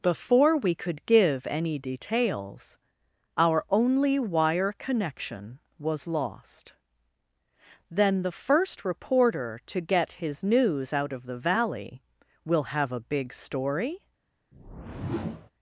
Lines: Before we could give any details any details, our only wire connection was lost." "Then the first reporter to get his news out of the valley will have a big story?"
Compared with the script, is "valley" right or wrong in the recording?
right